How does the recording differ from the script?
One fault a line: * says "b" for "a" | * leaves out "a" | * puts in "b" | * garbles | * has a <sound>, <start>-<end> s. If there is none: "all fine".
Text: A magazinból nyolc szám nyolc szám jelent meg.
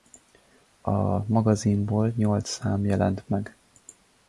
* leaves out "nyolc szám"